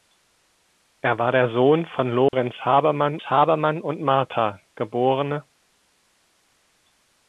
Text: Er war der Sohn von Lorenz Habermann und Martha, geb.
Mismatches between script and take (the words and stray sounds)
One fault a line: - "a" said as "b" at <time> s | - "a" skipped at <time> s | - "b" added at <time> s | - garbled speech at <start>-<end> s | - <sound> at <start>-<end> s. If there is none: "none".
- dropout at 2.3-2.3 s
- "Habermann" added at 3.2 s